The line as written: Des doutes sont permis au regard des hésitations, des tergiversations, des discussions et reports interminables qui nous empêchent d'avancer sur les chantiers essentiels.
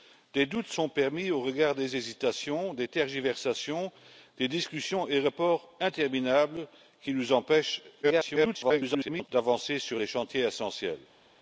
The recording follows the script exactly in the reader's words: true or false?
false